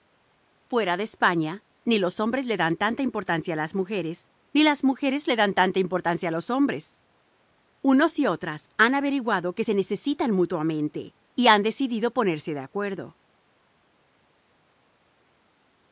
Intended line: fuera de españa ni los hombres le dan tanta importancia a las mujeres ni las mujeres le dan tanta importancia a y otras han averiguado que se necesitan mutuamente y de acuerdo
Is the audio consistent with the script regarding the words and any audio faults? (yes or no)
no